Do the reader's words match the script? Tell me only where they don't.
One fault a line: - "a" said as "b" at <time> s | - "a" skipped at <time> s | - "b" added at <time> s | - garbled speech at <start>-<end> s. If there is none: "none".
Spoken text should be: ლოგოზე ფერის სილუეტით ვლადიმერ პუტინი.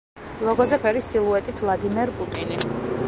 none